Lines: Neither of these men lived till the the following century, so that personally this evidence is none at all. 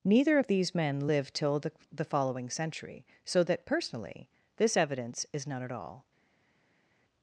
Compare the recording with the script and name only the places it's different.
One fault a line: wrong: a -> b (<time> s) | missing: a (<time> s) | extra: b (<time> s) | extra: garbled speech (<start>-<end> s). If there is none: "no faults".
no faults